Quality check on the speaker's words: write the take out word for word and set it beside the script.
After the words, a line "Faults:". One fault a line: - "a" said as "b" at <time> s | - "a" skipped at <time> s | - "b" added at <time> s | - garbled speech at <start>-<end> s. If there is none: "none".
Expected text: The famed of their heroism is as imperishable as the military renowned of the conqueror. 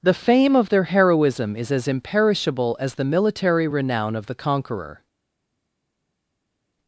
The fame of their heroism is as imperishable as the military renown of the conqueror.
Faults:
- "famed" said as "fame" at 0.1 s
- "renowned" said as "renown" at 3.7 s